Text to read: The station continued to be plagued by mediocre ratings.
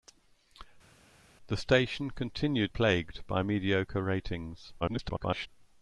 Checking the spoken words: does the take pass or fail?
fail